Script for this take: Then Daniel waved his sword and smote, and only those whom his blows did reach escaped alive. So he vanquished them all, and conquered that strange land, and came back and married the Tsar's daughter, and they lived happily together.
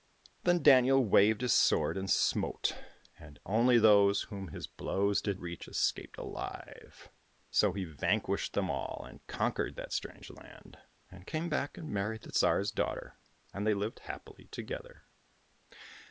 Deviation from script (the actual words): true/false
false